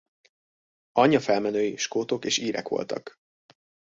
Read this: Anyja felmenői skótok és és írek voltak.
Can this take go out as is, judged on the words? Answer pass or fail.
fail